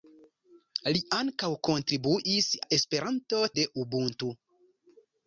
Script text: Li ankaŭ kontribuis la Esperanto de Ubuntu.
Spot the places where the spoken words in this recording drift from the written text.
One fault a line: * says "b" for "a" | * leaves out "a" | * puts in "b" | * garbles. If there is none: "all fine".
all fine